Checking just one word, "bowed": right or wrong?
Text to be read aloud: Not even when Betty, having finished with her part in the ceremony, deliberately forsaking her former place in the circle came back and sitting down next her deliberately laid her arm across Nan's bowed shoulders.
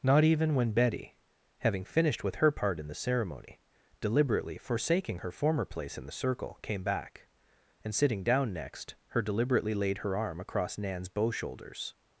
wrong